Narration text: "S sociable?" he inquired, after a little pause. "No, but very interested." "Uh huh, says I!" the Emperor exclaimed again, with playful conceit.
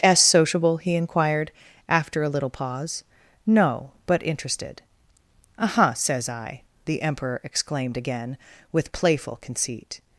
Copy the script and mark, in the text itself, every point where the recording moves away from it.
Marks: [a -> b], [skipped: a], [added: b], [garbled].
"S sociable?" he inquired, after a little pause. "No, but [skipped: very] interested." "Uh huh, says I!" the Emperor exclaimed again, with playful conceit.